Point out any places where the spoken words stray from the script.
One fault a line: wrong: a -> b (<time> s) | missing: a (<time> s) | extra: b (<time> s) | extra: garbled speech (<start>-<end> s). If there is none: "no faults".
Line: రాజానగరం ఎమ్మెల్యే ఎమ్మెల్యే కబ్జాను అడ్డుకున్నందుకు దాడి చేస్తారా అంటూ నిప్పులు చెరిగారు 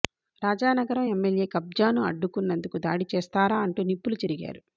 missing: ఎమ్మెల్యే (1.5 s)